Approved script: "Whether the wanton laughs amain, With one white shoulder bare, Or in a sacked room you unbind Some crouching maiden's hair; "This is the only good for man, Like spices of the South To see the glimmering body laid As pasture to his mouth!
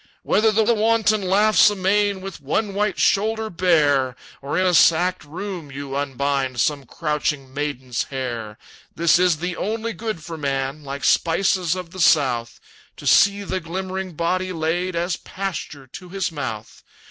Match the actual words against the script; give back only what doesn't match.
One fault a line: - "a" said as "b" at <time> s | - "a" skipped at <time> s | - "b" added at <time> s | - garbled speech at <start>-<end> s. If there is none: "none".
- "the" added at 0.6 s